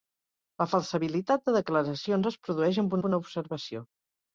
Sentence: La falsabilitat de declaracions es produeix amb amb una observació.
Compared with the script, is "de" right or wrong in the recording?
right